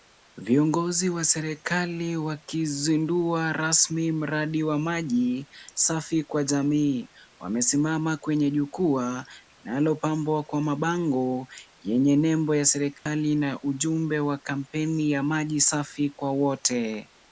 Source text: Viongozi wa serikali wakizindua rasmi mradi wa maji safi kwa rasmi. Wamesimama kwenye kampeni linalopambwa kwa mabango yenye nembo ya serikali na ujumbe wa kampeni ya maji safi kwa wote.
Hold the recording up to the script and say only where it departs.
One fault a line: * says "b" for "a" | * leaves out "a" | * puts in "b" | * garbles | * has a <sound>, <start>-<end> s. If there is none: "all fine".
* says "jamii" for "rasmi"
* says "jukwaa" for "kampeni"
* has a dropout, 13.0-13.1 s